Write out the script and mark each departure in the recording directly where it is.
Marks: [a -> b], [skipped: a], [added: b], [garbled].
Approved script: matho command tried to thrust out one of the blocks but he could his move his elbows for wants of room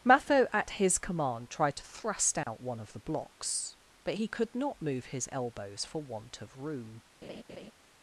matho [added: at his] command tried to thrust out one of the blocks but he could [his -> not] move his elbows for [wants -> want] of room